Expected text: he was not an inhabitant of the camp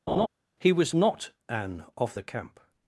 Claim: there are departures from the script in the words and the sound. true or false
true